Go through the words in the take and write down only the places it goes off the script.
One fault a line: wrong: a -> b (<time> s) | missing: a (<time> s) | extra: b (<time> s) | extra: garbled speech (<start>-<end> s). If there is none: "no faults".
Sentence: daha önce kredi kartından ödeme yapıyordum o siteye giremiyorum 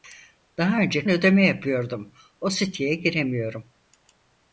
missing: kredi kartından (1.1 s)